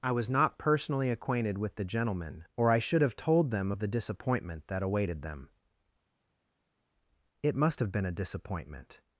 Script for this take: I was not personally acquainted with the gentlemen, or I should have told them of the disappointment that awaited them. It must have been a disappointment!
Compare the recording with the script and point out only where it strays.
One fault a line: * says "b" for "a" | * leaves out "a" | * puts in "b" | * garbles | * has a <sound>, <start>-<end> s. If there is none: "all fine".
all fine